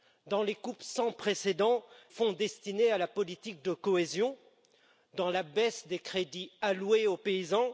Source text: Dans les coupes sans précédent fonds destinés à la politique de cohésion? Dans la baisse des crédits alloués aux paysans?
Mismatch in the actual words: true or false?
false